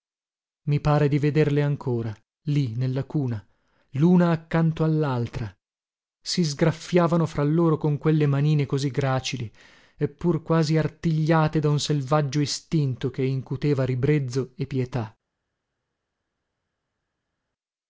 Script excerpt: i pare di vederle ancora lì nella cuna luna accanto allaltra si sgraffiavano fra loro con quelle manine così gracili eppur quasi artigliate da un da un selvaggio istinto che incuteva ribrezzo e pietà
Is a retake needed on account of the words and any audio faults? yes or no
yes